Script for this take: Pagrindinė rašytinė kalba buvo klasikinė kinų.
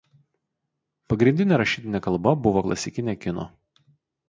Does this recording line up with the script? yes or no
yes